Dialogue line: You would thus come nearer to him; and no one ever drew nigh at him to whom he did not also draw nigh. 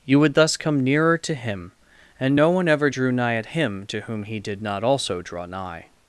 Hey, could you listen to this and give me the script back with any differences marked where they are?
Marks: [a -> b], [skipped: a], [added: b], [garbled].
You would thus come nearer to him; and no one ever drew nigh at him to whom he did not also draw nigh.